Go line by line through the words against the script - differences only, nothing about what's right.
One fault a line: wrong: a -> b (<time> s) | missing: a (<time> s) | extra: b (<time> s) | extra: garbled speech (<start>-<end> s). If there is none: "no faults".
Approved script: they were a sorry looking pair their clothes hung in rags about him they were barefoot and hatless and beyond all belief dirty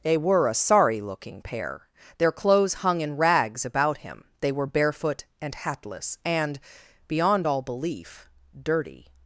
no faults